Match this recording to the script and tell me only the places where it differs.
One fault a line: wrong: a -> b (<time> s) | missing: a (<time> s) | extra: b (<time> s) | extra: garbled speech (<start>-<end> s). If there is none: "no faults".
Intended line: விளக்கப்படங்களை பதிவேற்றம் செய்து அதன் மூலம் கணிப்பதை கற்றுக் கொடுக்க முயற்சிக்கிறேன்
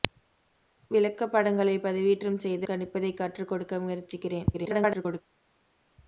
missing: அதன் மூலம் (2.7 s)
extra: garbled speech (4.5-5.2 s)